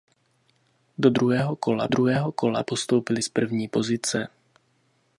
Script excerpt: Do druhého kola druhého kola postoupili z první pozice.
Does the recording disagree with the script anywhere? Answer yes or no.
no